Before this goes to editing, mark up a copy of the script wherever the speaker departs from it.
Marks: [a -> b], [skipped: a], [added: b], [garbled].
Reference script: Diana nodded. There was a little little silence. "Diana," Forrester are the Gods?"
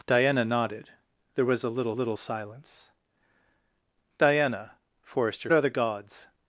Diana nodded. There was a little little silence. "Diana," Forrester are the Gods?"